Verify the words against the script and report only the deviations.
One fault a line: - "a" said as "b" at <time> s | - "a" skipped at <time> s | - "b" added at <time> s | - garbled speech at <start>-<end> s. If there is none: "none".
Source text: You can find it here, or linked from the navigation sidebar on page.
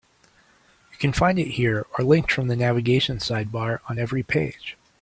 - "every" added at 4.0 s